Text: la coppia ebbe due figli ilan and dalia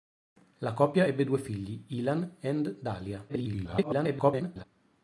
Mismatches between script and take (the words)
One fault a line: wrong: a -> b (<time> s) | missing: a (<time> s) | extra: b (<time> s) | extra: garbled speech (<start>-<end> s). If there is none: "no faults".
extra: garbled speech (3.3-4.6 s)